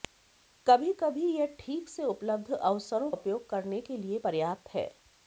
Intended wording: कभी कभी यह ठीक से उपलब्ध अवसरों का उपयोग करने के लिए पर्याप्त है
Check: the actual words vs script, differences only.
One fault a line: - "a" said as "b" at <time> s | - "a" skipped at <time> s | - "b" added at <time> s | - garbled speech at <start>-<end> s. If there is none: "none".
- "का" skipped at 3.1 s